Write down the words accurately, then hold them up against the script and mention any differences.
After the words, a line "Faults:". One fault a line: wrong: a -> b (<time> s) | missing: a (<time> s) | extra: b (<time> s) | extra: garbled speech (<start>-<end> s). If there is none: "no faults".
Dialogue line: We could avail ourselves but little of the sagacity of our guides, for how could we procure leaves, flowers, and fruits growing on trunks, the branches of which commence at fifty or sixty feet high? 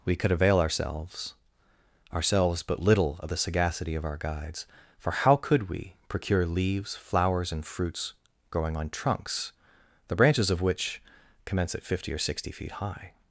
We could avail ourselves ourselves but little of the sagacity of our guides, for how could we procure leaves, flowers, and fruits growing on trunks, the branches of which commence at fifty or sixty feet high?
Faults:
extra: ourselves (2.1 s)